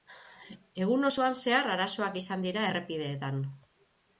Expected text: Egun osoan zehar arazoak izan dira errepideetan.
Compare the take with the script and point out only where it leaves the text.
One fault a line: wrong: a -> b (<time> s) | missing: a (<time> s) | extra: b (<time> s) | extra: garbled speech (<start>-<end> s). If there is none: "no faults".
no faults